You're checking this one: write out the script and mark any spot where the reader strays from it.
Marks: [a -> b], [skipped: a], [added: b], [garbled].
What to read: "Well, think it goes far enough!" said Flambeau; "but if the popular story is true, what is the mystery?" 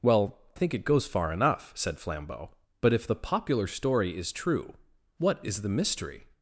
"Well, think it goes far enough!" said Flambeau; "but if the popular story is true, what is the mystery?"